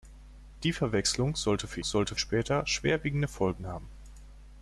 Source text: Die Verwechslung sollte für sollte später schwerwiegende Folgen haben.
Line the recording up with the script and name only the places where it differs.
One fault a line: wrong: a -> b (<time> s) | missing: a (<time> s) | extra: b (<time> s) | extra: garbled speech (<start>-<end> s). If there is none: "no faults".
no faults